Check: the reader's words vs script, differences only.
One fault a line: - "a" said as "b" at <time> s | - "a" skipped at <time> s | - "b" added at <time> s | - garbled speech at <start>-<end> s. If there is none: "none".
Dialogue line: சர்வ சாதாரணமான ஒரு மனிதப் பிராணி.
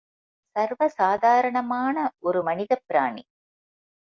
none